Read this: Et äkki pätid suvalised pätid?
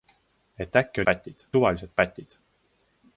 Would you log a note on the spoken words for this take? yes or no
no